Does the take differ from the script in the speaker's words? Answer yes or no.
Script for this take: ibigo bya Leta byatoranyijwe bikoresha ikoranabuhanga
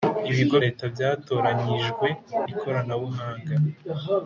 yes